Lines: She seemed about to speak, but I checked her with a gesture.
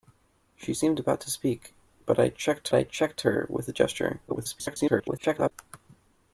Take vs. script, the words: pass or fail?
fail